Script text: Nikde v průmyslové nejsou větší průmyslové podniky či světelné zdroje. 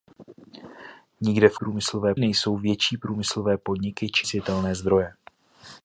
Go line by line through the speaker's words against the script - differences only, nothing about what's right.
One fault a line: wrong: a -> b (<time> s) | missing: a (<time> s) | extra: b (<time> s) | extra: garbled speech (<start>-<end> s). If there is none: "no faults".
no faults